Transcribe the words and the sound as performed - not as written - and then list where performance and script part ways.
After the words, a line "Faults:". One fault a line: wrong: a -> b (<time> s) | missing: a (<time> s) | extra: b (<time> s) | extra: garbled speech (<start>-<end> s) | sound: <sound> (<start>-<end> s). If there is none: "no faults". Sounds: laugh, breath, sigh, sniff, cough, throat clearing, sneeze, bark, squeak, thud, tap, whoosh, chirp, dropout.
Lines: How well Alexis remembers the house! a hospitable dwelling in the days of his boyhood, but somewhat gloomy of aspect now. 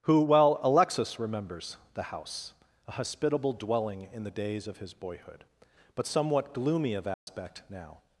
Who well Alexis remembers the house! a hospitable dwelling in the days of his boyhood, but somewhat gloomy of aspect now.
Faults:
wrong: How -> Who (0.1 s)
sound: dropout (7.1-7.3 s)